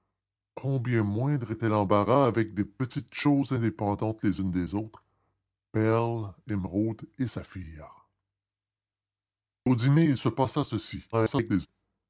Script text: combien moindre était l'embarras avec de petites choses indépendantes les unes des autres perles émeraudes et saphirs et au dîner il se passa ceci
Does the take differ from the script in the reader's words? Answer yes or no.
yes